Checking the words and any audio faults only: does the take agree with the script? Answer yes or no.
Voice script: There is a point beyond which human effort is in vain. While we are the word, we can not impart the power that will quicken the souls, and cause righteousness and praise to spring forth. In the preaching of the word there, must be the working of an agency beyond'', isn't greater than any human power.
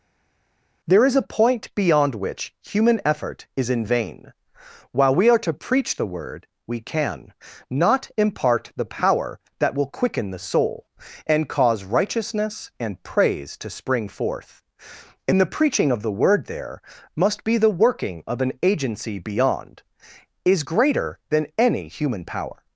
no